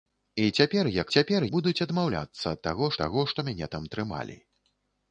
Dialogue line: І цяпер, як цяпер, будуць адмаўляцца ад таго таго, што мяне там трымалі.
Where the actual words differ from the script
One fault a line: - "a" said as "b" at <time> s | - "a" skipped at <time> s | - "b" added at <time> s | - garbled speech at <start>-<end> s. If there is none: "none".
none